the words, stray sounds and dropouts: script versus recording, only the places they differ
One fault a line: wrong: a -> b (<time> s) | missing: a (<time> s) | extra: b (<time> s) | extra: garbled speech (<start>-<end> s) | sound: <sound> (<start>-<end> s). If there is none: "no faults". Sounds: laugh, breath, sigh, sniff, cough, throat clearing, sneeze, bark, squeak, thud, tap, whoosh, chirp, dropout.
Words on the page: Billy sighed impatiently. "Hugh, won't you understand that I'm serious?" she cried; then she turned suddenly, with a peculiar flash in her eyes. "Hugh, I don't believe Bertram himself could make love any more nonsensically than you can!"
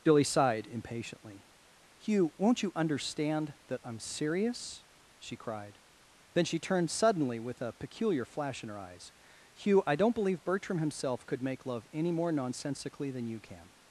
no faults